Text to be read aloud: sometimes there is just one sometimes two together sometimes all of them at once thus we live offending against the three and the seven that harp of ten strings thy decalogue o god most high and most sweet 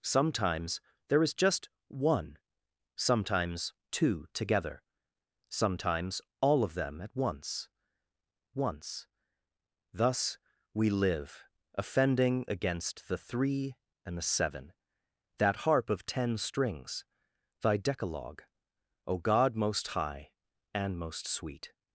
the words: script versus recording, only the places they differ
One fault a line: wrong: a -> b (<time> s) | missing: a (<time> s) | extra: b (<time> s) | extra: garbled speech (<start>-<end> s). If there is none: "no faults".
extra: once (8.6 s)